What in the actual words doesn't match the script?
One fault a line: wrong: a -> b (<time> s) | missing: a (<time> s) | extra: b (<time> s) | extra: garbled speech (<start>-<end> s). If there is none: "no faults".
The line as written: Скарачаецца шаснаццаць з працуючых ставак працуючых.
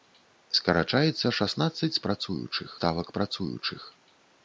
no faults